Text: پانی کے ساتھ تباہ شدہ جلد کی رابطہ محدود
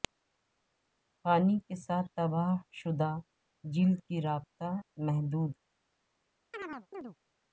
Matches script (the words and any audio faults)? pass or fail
fail